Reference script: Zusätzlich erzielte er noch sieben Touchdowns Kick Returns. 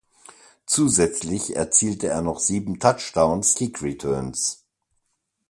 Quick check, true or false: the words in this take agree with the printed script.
true